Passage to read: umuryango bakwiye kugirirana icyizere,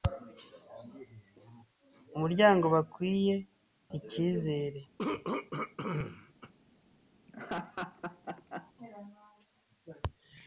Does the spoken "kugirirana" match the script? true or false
false